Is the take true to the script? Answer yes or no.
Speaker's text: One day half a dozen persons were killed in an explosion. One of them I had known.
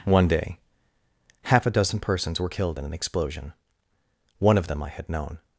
yes